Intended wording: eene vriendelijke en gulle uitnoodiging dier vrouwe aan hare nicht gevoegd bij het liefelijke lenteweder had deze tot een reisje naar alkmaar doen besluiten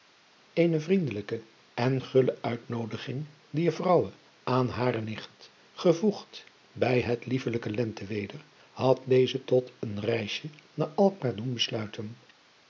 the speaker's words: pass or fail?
pass